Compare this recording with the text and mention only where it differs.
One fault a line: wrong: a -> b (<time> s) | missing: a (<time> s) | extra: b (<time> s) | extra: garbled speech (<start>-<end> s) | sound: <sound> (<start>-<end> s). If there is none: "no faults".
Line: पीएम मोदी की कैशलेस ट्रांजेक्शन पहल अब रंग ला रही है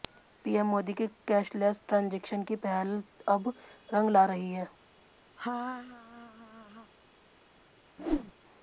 extra: की (2.4 s)
sound: laugh (5.4-6.9 s)
sound: whoosh (8.0-8.3 s)